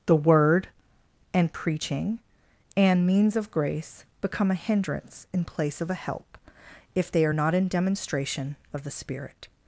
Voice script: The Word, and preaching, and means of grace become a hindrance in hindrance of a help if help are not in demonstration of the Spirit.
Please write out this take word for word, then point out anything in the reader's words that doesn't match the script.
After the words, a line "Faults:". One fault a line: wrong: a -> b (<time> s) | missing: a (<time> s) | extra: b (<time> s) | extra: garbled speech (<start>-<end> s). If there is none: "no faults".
The Word, and preaching, and means of grace become a hindrance in place of a help if they are not in demonstration of the Spirit.
Faults:
wrong: hindrance -> place (5.5 s)
wrong: help -> they (7.1 s)